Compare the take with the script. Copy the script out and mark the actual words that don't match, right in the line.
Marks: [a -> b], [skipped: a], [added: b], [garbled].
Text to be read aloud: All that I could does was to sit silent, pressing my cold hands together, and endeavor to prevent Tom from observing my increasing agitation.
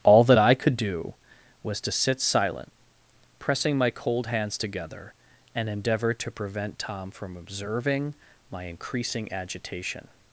All that I could [does -> do] was to sit silent, pressing my cold hands together, and endeavor to prevent Tom from observing my increasing agitation.